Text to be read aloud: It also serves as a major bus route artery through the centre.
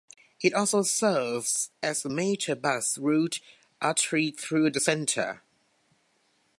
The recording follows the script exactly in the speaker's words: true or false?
true